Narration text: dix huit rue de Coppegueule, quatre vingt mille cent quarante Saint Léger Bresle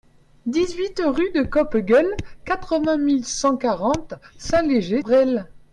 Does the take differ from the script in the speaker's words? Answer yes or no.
no